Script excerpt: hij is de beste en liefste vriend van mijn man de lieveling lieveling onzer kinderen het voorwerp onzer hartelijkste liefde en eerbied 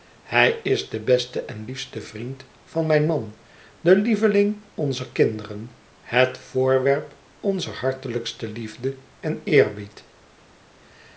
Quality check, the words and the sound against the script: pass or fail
fail